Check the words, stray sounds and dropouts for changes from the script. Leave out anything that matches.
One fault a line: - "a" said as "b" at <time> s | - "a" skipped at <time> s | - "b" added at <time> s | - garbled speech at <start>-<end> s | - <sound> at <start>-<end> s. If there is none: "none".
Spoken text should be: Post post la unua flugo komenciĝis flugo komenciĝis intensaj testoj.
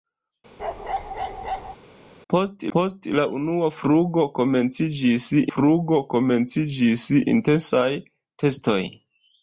- bark at 0.6-1.8 s